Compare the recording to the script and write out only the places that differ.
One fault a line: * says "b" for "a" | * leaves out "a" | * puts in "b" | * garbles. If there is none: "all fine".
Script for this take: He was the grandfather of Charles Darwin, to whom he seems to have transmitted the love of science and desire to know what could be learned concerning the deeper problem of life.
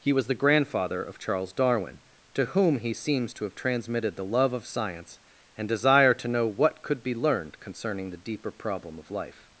all fine